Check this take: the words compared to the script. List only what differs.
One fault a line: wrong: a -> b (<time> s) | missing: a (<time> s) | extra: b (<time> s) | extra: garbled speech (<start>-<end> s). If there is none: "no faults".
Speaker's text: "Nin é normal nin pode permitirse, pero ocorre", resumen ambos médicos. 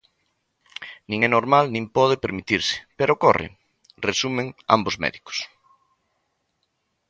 no faults